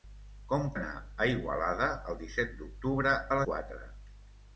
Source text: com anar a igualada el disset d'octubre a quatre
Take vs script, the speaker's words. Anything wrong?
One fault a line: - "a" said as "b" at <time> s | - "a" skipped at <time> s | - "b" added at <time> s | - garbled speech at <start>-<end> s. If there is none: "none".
none